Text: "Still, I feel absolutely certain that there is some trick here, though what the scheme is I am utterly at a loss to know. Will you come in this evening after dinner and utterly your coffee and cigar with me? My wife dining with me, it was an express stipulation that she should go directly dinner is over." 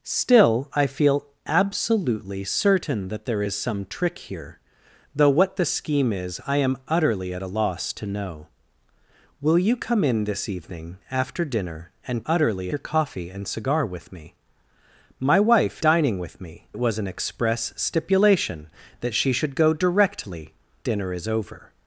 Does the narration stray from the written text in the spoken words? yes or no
no